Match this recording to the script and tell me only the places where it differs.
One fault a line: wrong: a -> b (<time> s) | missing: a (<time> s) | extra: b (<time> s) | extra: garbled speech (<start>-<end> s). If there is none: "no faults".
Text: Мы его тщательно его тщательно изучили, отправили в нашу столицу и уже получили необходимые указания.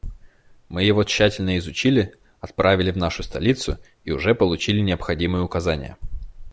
missing: его тщательно (1.6 s)